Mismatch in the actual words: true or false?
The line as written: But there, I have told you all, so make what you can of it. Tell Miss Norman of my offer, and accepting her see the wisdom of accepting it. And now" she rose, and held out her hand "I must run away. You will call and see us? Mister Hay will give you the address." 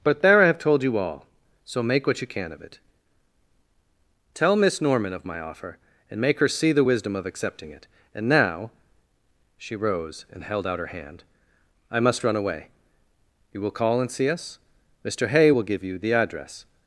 true